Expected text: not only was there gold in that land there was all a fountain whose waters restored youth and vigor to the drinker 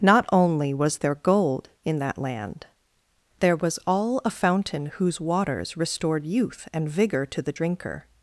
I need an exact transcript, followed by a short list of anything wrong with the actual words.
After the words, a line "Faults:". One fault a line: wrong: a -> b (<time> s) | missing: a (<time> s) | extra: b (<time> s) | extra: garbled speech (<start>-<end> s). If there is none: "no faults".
not only was there gold in that land there was all a fountain whose waters restored youth and vigor to the drinker
Faults:
no faults